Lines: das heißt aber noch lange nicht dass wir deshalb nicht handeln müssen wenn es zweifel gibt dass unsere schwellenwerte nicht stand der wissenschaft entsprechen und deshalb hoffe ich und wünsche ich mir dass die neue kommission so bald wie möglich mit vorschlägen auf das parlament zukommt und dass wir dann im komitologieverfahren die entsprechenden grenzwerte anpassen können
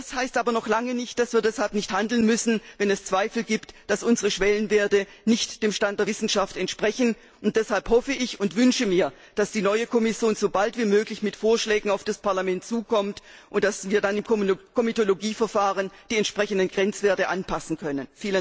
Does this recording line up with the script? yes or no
no